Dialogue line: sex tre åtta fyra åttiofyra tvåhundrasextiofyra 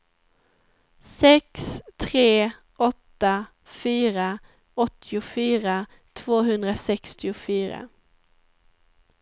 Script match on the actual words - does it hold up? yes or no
yes